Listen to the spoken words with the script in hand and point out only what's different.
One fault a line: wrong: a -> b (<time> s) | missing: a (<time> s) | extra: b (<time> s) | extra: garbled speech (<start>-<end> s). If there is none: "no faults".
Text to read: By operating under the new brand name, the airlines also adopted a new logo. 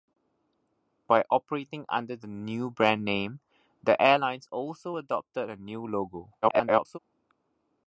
extra: garbled speech (6.4-7.0 s)